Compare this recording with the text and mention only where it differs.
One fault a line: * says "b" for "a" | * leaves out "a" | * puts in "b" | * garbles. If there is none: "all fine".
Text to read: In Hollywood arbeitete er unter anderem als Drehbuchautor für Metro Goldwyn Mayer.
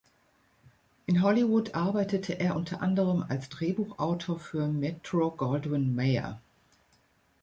all fine